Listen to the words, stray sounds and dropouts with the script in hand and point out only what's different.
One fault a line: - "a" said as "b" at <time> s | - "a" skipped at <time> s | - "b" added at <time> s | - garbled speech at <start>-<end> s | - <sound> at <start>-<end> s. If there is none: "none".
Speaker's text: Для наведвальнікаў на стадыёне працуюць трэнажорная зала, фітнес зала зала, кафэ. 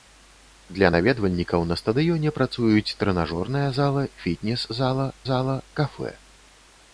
none